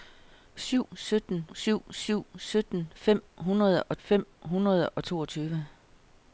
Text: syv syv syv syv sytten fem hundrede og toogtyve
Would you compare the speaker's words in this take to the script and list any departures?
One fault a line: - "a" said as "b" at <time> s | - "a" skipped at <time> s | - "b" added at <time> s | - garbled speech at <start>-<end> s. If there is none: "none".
- "syv" said as "sytten" at 0.9 s
- "fem hundrede og" added at 4.0 s